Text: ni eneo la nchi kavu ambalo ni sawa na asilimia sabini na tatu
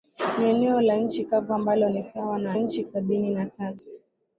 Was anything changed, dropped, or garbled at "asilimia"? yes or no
yes